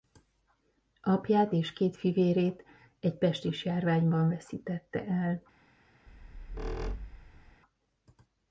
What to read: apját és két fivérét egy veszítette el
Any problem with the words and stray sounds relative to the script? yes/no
yes